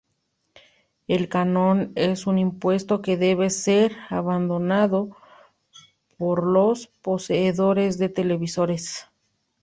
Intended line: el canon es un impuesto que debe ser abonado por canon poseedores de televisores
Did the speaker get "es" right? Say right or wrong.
right